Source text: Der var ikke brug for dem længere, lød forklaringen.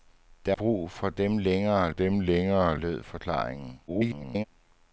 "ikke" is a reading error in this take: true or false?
true